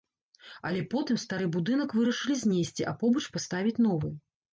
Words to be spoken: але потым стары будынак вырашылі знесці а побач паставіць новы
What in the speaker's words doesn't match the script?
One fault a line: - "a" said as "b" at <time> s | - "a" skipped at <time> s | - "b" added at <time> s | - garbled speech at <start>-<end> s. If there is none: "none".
none